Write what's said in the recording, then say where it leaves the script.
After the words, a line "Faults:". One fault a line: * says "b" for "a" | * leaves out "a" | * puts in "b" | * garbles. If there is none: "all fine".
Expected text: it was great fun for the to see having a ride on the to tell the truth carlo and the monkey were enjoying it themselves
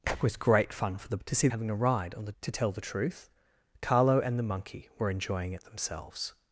it was great fun for the to see having a ride on the to tell the truth carlo and the monkey were enjoying it themselves
Faults:
all fine